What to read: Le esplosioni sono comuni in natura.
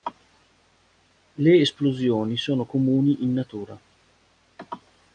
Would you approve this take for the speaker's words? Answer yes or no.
yes